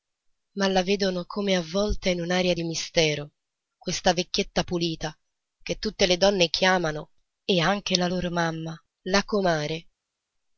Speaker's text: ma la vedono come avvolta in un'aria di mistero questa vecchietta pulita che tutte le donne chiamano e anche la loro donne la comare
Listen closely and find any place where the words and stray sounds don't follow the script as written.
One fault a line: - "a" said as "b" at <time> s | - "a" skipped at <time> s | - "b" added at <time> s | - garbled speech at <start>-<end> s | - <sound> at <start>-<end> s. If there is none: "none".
- "donne" said as "mamma" at 8.3 s